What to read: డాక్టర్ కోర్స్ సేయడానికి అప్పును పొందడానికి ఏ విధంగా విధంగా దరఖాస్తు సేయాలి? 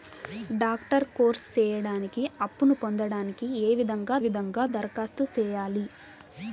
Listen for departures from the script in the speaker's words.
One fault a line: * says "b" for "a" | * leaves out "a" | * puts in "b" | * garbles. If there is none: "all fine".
all fine